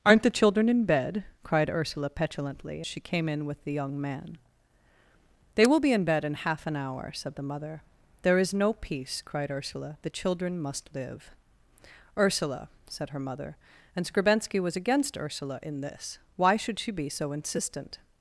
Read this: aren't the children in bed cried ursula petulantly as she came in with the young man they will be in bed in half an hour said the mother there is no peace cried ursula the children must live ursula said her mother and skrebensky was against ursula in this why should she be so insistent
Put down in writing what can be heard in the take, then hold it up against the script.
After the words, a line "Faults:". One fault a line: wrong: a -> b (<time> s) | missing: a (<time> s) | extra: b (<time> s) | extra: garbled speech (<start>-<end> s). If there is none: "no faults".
aren't the children in bed cried ursula petulantly she came in with the young man they will be in bed in half an hour said the mother there is no peace cried ursula the children must live ursula said her mother and skrebensky was against ursula in this why should she be so insistent
Faults:
missing: as (2.8 s)